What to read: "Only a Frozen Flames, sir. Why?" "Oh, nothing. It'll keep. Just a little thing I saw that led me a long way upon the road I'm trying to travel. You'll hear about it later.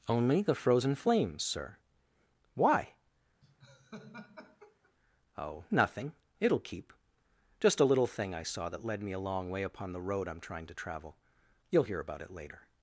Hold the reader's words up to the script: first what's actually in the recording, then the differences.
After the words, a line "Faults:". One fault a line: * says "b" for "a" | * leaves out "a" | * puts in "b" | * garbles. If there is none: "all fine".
"Only the Frozen Flames, sir. Why?" "Oh, nothing. It'll keep. Just a little thing I saw that led me a long way upon the road I'm trying to travel. You'll hear about it later.
Faults:
* says "the" for "a"